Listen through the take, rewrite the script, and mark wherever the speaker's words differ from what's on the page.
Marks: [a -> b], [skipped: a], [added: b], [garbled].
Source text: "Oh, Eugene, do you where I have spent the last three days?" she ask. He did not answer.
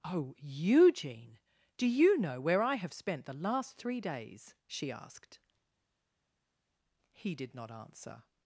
"Oh, Eugene, do you [added: know] where I have spent the last three days?" she [ask. -> asked] He did not answer.